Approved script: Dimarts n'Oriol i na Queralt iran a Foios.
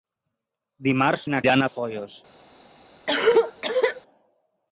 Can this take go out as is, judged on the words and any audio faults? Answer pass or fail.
fail